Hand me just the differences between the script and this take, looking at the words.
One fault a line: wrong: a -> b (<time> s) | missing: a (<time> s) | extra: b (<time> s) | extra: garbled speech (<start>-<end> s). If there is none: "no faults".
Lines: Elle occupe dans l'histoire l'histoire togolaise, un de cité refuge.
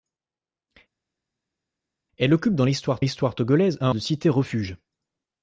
no faults